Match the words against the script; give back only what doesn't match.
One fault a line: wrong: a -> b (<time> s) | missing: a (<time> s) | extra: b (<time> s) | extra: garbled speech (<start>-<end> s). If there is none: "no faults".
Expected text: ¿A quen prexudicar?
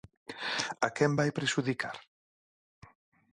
extra: vai (1.2 s)